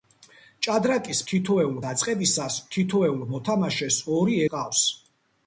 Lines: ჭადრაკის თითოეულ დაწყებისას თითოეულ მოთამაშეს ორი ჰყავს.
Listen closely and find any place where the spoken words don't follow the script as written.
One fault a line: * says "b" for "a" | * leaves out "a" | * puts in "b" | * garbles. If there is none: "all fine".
all fine